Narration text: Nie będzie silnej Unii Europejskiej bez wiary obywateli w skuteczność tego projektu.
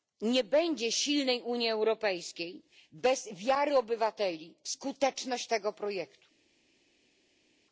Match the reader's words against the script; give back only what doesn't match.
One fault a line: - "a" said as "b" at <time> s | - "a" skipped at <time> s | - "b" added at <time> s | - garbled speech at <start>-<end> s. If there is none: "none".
none